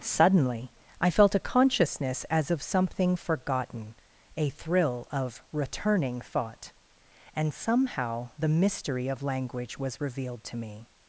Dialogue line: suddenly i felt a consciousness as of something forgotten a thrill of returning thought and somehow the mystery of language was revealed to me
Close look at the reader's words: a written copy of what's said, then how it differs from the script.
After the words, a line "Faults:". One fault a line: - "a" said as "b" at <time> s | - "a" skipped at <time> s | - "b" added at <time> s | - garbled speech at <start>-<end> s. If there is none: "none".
suddenly i felt a consciousness as of something forgotten a thrill of returning thought and somehow the mystery of language was revealed to me
Faults:
none